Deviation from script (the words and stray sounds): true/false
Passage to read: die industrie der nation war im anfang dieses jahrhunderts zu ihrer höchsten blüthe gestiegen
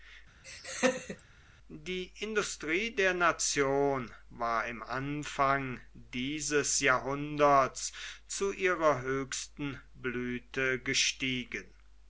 true